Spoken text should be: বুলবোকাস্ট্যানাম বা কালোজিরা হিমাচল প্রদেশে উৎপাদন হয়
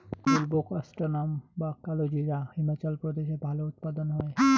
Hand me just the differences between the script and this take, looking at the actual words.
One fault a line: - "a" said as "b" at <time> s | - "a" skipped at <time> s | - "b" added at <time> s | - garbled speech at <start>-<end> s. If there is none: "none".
- "ভালো" added at 3.5 s